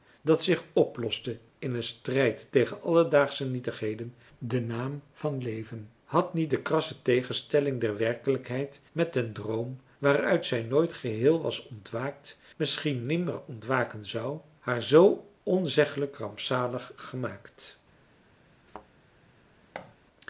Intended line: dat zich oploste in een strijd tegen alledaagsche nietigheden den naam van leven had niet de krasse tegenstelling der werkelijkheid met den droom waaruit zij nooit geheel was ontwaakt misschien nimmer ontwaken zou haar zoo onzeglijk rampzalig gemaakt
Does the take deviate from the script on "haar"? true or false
false